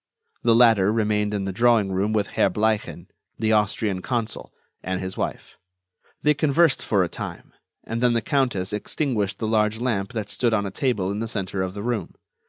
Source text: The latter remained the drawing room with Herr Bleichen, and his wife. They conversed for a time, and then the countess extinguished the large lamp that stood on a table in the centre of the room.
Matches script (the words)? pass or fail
fail